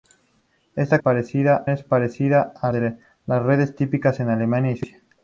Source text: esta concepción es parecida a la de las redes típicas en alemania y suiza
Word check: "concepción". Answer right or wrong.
wrong